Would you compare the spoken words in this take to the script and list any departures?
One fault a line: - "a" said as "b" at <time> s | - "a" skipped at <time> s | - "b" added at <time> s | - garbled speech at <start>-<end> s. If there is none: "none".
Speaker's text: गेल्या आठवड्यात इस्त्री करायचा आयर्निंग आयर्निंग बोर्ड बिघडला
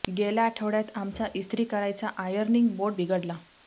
- "आमचा" added at 0.9 s
- "आयर्निंग" skipped at 2.7 s